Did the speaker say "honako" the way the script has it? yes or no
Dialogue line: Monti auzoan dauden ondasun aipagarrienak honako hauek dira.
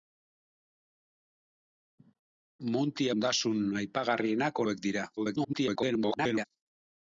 no